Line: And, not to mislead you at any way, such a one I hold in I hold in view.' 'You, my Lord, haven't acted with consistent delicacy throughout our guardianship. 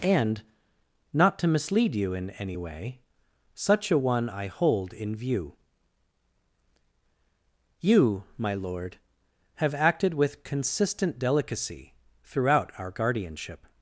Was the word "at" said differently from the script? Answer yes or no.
yes